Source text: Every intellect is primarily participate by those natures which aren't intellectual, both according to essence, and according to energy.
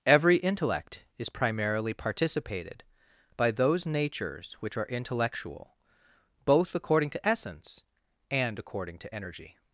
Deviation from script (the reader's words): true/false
true